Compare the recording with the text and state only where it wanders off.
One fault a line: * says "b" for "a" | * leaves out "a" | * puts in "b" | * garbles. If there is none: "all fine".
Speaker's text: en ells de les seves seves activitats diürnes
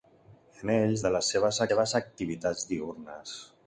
all fine